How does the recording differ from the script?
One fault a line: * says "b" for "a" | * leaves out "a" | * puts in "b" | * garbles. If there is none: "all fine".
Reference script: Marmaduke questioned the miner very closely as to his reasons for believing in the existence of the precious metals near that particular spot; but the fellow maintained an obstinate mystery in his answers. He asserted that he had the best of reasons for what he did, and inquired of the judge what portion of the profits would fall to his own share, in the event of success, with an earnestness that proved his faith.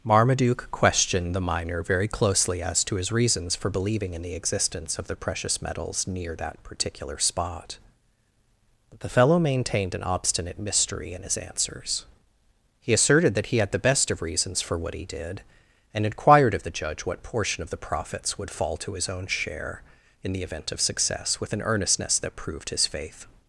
all fine